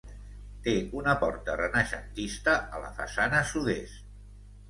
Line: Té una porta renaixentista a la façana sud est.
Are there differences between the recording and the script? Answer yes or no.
no